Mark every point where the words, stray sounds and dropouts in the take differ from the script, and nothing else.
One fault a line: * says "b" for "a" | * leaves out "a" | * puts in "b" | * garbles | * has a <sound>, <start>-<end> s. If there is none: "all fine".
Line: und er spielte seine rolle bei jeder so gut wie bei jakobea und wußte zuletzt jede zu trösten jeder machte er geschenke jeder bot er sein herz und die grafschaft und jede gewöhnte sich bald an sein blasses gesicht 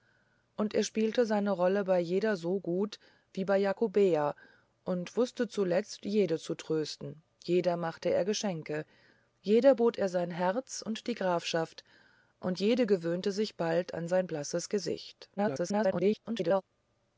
* garbles